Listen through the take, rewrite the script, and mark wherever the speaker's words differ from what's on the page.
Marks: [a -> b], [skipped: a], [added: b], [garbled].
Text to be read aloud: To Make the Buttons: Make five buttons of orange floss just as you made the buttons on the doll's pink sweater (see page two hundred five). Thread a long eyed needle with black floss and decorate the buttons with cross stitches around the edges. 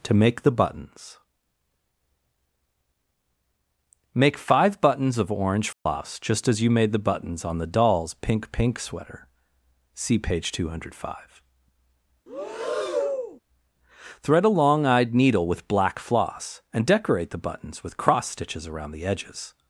To Make the Buttons: Make five buttons of orange floss just as you made the buttons on the doll's pink [added: pink] sweater (see page two hundred five). Thread a long eyed needle with black floss and decorate the buttons with cross stitches around the edges.